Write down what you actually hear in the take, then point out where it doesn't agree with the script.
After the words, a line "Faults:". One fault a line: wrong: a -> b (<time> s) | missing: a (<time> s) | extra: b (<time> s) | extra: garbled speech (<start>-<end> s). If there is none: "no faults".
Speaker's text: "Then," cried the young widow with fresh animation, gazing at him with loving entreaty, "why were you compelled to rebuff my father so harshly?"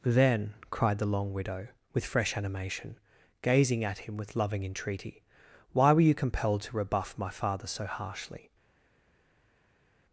"Then," cried the long widow with fresh animation, gazing at him with loving entreaty, "why were you compelled to rebuff my father so harshly?"
Faults:
wrong: young -> long (1.1 s)